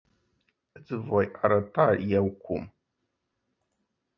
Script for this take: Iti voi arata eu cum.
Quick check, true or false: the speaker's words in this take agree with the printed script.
true